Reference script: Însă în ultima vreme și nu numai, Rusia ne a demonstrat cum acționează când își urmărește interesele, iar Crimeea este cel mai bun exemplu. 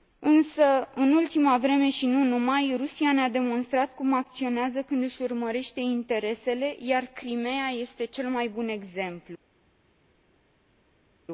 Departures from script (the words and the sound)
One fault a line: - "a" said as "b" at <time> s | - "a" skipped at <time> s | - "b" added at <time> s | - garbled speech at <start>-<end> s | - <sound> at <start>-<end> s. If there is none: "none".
none